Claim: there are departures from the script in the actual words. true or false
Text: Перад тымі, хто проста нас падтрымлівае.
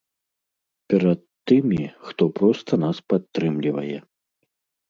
false